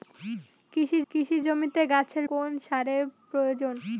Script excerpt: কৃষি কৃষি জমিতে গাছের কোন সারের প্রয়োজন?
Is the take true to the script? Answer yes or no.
yes